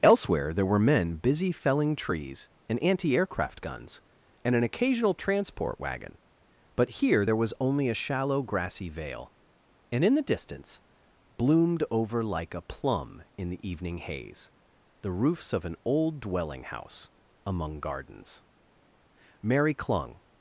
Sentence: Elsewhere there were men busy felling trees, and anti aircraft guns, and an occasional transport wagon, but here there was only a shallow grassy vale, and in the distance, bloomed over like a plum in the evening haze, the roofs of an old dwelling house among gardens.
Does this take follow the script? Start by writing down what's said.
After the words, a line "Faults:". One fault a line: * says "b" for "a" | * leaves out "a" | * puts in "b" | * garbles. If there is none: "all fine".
Elsewhere there were men busy felling trees, and anti aircraft guns, and an occasional transport wagon, but here there was only a shallow grassy vale, and in the distance, bloomed over like a plum in the evening haze, the roofs of an old dwelling house among gardens. Mary clung
Faults:
* puts in "Mary clung"